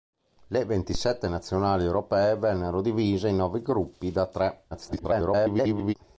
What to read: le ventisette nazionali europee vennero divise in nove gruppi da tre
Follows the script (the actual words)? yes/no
no